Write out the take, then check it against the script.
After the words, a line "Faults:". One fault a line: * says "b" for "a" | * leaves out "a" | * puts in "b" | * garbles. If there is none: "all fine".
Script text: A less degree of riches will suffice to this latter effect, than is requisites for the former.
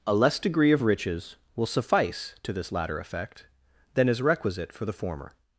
A less degree of riches will suffice to this latter effect, than is requisite for the former.
Faults:
* says "requisite" for "requisites"